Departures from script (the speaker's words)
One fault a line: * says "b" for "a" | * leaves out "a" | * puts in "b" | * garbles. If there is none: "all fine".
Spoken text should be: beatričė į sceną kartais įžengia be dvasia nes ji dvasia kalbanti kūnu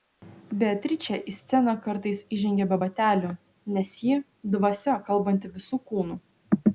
* says "batelių" for "dvasia"
* puts in "visu"